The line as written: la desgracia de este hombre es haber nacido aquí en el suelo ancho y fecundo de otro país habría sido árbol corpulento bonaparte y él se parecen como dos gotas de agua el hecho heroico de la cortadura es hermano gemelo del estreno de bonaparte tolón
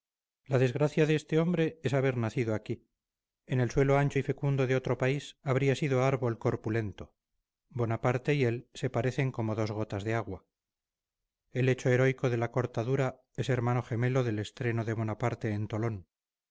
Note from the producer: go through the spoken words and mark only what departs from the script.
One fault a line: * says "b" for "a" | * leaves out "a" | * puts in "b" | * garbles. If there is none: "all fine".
* puts in "en"